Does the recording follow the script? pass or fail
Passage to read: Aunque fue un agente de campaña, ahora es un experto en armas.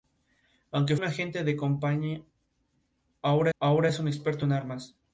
fail